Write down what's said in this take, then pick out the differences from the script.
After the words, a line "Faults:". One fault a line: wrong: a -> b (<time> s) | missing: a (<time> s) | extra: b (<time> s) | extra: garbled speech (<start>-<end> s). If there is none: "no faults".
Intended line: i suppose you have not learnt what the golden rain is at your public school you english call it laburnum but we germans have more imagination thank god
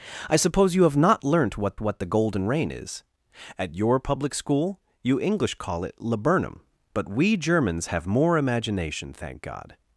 i suppose you have not learnt what what the golden rain is at your public school you english call it laburnum but we germans have more imagination thank god
Faults:
extra: what (1.8 s)